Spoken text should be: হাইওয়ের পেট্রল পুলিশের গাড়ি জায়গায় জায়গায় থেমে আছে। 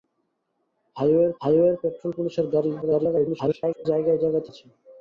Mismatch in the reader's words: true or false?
true